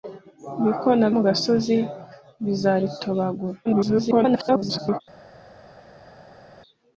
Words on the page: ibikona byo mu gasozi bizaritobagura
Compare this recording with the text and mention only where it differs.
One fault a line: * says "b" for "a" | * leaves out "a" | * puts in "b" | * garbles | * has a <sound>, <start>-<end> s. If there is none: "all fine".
* leaves out "byo"
* garbles